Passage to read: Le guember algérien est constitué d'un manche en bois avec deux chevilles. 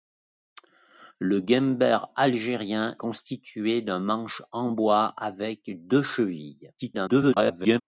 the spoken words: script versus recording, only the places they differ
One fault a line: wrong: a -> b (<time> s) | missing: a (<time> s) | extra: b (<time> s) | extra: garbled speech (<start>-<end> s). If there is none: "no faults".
missing: est (3.0 s)
extra: garbled speech (6.8-7.8 s)